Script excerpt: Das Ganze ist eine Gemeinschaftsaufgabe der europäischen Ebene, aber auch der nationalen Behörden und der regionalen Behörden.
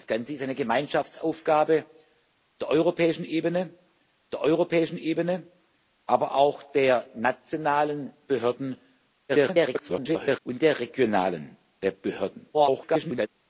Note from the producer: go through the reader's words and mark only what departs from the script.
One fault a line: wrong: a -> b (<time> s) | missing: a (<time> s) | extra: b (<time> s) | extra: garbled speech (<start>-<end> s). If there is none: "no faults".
extra: der europäischen Ebene (4.3 s)
extra: garbled speech (9.3-10.4 s)
extra: garbled speech (12.5-13.3 s)